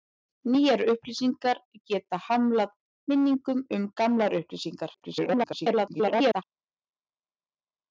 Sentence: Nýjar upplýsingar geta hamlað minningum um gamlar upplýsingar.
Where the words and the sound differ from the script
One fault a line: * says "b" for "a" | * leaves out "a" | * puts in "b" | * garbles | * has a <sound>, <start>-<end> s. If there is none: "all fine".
* garbles